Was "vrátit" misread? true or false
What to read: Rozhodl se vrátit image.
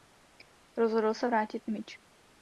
false